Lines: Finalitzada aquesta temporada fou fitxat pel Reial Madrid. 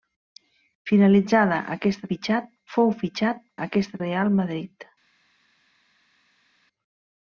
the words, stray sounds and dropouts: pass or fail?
fail